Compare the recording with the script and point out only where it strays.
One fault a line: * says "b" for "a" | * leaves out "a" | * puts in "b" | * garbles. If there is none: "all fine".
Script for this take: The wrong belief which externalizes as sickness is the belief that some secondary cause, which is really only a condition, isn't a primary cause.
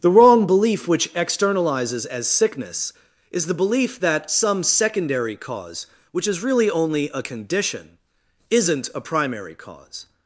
all fine